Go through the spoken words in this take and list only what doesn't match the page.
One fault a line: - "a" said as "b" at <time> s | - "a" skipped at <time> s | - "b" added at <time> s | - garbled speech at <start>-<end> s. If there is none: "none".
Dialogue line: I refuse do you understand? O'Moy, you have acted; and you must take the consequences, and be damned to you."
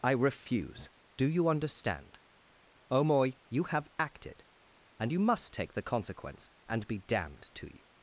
- "consequences" said as "consequence" at 5.8 s